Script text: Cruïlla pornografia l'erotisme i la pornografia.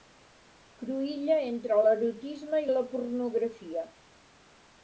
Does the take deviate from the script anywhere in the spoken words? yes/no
yes